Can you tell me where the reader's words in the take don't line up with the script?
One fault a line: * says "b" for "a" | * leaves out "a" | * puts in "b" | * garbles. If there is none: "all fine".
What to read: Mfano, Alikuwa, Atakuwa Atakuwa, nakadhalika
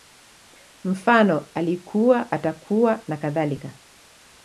* leaves out "Atakuwa"